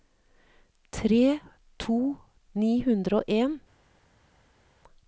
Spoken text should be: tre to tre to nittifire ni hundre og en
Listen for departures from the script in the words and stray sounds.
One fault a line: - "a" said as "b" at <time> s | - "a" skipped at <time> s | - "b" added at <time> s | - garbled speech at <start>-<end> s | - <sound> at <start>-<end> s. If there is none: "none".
- "tre to nittifire" skipped at 2.2 s